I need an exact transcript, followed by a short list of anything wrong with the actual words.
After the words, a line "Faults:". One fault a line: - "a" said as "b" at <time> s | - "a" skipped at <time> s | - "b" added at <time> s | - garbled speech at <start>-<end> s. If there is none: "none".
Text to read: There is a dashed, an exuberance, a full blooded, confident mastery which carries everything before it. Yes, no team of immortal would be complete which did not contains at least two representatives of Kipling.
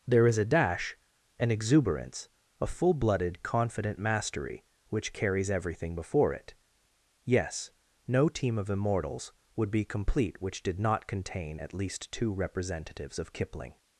There is a dash, an exuberance, a full blooded, confident mastery which carries everything before it. Yes, no team of immortals would be complete which did not contain at least two representatives of Kipling.
Faults:
- "dashed" said as "dash" at 0.5 s
- "immortal" said as "immortals" at 8.7 s
- "contains" said as "contain" at 11.0 s